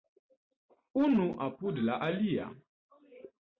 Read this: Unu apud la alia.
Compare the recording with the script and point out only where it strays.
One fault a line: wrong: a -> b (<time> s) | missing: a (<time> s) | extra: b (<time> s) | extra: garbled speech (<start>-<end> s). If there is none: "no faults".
no faults